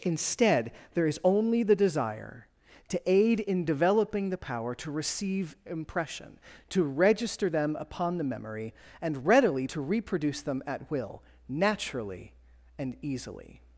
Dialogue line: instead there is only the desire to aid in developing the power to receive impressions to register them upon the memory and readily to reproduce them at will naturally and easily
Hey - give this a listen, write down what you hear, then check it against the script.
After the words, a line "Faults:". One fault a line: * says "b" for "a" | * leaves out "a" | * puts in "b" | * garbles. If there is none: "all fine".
instead there is only the desire to aid in developing the power to receive impression to register them upon the memory and readily to reproduce them at will naturally and easily
Faults:
* says "impression" for "impressions"